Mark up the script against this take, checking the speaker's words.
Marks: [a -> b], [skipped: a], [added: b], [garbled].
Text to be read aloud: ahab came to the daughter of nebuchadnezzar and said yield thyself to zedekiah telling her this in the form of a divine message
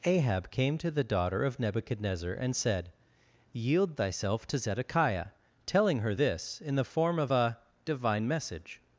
ahab came to the daughter of nebuchadnezzar and said yield thyself to zedekiah telling her this in the form of a divine message